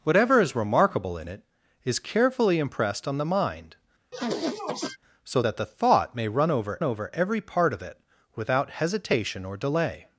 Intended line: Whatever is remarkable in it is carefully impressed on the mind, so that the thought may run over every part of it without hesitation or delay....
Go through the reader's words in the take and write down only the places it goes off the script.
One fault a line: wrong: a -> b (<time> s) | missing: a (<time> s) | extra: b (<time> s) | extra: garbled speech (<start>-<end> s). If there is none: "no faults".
extra: over (6.8 s)